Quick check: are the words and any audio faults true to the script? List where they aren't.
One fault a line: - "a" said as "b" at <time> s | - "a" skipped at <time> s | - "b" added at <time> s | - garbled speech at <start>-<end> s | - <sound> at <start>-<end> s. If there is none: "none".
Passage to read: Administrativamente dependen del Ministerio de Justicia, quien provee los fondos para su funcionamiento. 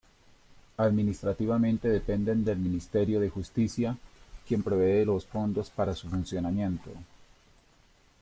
none